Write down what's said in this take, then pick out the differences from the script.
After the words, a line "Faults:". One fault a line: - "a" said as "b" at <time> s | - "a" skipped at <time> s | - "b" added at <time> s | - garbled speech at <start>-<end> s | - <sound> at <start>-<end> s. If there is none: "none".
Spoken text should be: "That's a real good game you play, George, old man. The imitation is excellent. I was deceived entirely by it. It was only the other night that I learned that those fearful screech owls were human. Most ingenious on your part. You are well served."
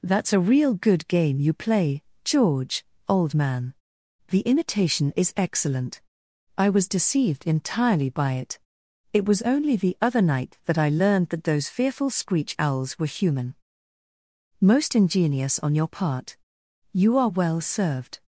"That's a real good game you play, George, old man. The imitation is excellent. I was deceived entirely by it. It was only the other night that I learned that those fearful screech owls were human. Most ingenious on your part. You are well served."
Faults:
none